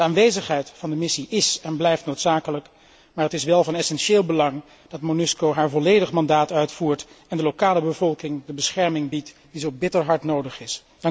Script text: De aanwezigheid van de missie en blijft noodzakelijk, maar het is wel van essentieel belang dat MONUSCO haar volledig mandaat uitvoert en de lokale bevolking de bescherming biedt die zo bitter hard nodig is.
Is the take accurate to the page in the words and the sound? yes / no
no